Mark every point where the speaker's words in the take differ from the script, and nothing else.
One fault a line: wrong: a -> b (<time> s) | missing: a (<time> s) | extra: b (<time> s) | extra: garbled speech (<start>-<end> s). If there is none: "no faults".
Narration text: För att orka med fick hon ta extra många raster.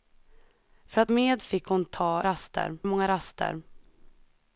missing: orka (1.1 s)
wrong: extra -> raster (2.2 s)